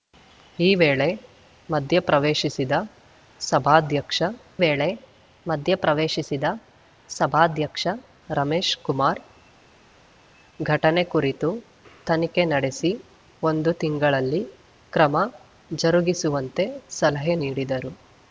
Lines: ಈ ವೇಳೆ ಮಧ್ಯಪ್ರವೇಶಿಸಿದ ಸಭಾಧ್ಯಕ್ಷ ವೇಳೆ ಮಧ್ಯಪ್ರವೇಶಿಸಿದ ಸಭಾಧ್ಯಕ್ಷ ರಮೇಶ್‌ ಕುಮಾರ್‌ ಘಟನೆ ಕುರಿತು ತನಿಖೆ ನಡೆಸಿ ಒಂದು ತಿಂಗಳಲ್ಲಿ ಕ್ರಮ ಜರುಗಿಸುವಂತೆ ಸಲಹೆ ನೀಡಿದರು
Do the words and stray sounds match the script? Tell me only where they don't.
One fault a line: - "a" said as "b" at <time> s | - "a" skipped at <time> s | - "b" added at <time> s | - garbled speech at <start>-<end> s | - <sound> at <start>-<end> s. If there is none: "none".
none